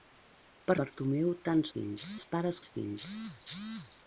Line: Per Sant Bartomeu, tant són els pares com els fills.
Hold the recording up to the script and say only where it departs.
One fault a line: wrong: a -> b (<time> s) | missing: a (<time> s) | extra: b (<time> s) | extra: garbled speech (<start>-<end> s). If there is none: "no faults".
missing: Sant (0.8 s)
wrong: són -> fills (1.8 s)
missing: com (2.6 s)